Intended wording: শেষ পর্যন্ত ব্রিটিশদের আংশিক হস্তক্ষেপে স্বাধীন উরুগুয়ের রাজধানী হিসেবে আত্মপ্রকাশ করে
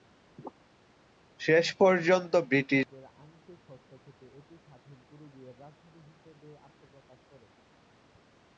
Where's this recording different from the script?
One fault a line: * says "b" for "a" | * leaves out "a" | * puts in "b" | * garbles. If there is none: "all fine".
* puts in "এটি"